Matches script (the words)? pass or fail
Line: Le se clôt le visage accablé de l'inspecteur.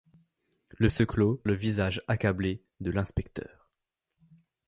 pass